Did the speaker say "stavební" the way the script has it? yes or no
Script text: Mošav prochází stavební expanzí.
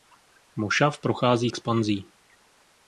no